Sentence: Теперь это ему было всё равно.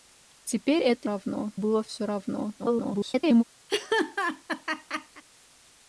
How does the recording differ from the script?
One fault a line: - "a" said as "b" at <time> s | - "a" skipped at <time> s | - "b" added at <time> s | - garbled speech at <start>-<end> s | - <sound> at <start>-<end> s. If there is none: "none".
- "ему" said as "равно" at 1.0 s
- garbled speech at 2.6-3.4 s
- laugh at 3.7-5.2 s